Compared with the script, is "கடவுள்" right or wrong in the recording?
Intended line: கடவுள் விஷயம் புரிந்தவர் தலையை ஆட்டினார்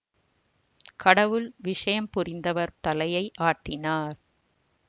right